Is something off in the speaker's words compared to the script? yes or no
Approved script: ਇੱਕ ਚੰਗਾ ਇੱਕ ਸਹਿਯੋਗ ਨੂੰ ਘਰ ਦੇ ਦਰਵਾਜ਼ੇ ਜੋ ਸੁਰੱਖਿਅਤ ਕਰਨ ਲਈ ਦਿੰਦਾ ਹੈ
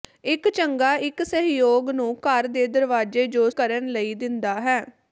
yes